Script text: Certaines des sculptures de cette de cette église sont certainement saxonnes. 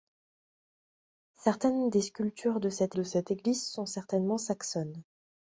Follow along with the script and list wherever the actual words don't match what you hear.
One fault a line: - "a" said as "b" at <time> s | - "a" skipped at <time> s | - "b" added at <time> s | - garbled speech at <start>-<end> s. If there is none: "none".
none